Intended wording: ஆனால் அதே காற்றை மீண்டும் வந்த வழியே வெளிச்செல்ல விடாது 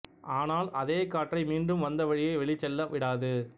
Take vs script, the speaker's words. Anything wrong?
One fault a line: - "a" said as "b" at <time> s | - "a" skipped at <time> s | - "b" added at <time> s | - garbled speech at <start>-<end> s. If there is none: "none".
none